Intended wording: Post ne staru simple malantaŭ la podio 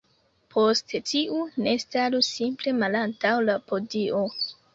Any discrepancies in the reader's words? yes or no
yes